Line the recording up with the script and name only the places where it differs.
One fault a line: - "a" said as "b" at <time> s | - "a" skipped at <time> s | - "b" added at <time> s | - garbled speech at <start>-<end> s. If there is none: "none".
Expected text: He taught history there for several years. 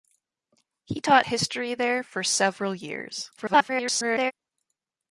- garbled speech at 3.4-4.3 s